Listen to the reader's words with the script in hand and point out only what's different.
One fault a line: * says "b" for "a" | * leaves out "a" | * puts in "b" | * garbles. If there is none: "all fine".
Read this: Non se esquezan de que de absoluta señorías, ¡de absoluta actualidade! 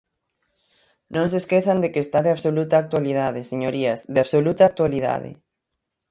* puts in "está"
* puts in "actualidade"